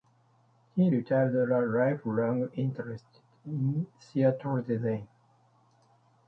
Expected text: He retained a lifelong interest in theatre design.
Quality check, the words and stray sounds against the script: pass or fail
pass